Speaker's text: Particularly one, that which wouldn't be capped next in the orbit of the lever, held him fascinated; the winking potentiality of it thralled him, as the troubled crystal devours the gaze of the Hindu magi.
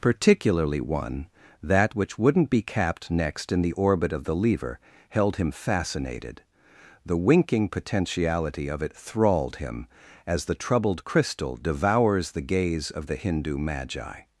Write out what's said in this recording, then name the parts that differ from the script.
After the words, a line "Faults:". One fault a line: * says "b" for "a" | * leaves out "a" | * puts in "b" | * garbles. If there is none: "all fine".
Particularly one, that which wouldn't be capped next in the orbit of the lever, held him fascinated; the winking potentiality of it thralled him, as the troubled crystal devours the gaze of the Hindu magi.
Faults:
all fine